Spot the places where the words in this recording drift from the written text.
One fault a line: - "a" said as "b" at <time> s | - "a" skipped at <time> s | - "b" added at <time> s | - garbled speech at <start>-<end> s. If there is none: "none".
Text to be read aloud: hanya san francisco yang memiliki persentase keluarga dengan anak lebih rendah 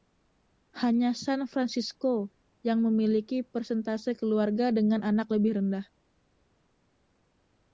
none